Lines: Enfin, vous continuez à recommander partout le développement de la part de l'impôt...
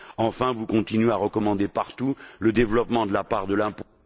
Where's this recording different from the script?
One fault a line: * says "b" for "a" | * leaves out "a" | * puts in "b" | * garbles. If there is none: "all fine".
all fine